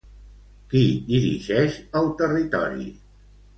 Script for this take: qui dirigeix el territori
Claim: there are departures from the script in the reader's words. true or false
false